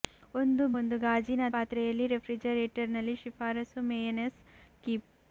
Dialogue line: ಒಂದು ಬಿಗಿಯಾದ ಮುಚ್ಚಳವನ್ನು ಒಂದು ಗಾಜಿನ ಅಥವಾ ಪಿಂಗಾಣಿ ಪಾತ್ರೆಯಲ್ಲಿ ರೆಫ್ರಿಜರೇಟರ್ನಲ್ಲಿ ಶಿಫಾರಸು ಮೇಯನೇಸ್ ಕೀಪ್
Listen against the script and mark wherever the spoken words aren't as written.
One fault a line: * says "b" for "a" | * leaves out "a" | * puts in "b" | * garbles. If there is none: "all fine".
* leaves out "ಬಿಗಿಯಾದ ಮುಚ್ಚಳವನ್ನು"
* leaves out "ಅಥವಾ ಪಿಂಗಾಣಿ"